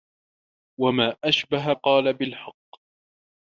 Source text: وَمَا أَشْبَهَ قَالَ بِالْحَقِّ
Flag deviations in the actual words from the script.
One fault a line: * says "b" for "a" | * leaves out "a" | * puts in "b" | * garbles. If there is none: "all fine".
all fine